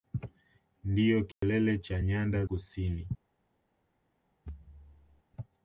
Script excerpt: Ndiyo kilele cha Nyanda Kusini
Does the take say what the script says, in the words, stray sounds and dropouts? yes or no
no